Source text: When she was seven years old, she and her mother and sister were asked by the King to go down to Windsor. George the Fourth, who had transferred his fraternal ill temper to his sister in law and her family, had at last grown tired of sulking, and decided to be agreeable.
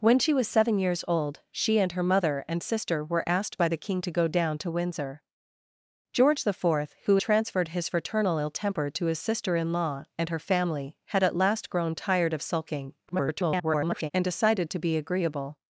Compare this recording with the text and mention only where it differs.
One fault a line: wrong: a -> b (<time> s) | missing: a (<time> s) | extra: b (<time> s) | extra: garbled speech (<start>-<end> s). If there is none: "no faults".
missing: had (7.2 s)
extra: garbled speech (13.1-14.1 s)